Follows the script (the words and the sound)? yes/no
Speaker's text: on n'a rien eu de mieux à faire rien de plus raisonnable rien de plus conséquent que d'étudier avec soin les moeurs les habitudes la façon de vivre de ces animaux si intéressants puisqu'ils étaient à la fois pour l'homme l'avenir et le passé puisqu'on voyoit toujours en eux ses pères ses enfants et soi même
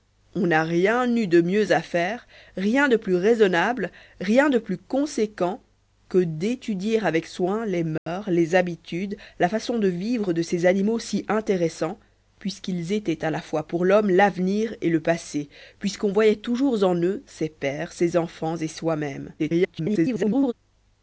no